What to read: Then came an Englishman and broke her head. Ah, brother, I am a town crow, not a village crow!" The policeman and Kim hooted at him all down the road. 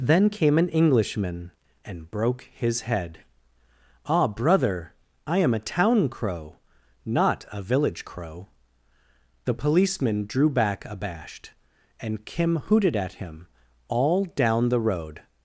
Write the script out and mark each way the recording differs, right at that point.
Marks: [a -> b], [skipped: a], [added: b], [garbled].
Then came an Englishman and broke [her -> his] head. Ah, brother, I am a town crow, not a village crow!" The policeman [added: drew back abashed] and Kim hooted at him all down the road.